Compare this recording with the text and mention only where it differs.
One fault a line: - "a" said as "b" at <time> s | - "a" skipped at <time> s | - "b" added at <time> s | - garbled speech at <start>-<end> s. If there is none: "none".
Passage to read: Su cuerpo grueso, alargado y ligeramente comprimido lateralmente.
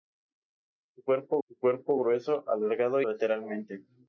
- "su cuerpo" added at 1.5 s
- "y ligeramente comprimido" skipped at 3.0 s